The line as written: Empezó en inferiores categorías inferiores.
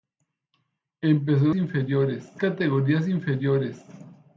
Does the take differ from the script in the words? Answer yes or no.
no